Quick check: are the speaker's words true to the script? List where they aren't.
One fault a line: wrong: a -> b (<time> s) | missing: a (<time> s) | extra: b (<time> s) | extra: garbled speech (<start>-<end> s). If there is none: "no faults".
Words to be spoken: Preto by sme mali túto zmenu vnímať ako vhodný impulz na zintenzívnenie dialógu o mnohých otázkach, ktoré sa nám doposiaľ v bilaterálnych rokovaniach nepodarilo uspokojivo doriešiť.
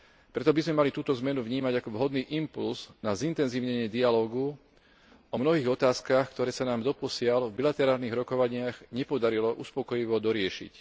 no faults